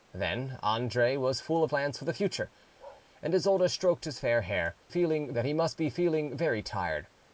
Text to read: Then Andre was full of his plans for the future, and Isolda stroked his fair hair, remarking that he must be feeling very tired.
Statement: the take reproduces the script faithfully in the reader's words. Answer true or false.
false